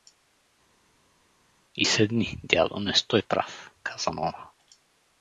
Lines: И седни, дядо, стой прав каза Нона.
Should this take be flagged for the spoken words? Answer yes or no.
yes